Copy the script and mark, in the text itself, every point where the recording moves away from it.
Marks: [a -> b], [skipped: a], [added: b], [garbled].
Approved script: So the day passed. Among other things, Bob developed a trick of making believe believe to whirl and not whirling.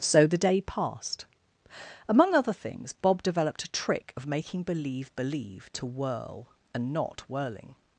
So the day passed. Among other things, Bob developed a trick of making believe believe to whirl and not whirling.